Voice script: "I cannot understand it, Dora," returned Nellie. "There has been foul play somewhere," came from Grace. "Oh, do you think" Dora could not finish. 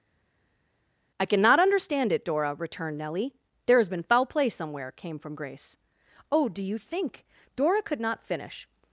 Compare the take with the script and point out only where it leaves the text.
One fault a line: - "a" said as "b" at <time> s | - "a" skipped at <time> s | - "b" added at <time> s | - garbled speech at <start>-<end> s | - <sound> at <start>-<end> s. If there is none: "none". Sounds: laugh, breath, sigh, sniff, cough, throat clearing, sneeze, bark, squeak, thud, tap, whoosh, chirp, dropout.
none